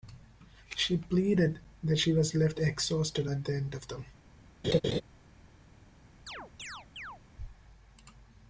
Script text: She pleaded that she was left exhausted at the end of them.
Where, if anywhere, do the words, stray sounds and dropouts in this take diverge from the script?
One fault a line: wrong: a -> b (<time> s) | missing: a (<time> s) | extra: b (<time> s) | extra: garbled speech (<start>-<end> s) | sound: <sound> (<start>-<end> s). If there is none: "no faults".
sound: laugh (4.6-5.0 s)
sound: chirp (6.3-7.2 s)